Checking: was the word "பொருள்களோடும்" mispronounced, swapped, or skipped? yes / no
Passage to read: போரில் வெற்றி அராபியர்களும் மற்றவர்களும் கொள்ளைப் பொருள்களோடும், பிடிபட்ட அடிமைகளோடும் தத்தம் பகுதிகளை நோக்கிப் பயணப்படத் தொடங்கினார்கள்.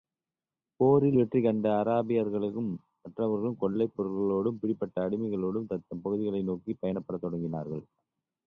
no